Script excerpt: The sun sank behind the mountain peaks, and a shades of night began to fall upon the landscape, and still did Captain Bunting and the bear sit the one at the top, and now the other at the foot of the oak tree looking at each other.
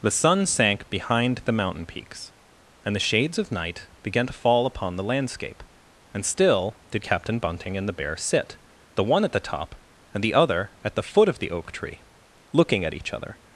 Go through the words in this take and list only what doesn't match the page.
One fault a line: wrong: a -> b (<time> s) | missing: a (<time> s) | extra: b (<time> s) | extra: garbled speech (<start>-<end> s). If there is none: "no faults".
wrong: a -> the (3.0 s)
missing: now (10.2 s)